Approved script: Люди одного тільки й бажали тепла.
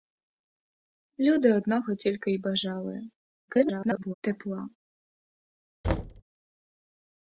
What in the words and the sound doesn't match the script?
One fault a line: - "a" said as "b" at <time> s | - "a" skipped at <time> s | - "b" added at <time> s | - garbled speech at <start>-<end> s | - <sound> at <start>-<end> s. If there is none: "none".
- garbled speech at 3.5-4.1 s
- thud at 5.8-6.2 s